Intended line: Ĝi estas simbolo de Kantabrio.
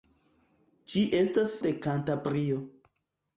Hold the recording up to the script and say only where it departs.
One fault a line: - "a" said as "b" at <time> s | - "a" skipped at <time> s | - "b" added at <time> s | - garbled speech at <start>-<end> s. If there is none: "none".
- "simbolo" skipped at 1.5 s